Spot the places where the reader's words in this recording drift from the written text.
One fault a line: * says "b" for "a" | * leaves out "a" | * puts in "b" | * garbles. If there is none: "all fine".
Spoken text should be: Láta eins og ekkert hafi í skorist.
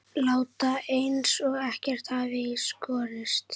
all fine